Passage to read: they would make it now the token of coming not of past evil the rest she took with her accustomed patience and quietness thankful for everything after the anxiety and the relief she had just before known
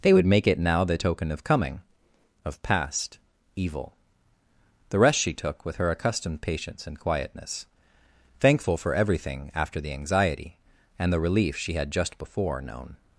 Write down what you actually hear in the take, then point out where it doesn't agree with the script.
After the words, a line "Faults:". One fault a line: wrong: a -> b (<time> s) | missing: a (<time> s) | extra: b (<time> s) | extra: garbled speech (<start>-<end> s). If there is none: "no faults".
they would make it now the token of coming of past evil the rest she took with her accustomed patience and quietness thankful for everything after the anxiety and the relief she had just before known
Faults:
missing: not (1.8 s)